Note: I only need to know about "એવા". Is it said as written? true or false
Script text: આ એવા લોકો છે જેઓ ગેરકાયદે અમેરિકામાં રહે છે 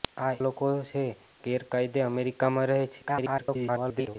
false